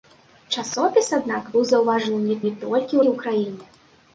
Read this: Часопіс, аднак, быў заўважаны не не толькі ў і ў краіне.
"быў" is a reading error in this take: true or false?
false